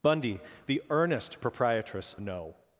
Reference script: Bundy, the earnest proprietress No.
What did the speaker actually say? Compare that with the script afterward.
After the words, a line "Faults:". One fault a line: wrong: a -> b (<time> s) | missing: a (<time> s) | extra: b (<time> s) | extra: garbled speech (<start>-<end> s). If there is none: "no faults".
Bundy, the earnest proprietress No.
Faults:
no faults